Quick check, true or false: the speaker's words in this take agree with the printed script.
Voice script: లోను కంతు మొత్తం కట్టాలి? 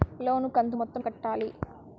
true